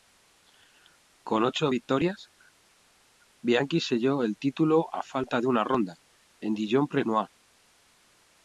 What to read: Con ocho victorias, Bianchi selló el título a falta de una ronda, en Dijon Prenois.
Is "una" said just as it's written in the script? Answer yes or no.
yes